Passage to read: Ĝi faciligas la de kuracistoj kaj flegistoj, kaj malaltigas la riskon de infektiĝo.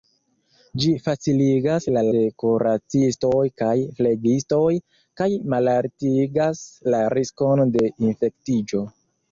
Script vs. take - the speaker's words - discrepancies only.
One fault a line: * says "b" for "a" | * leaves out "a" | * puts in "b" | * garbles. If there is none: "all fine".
all fine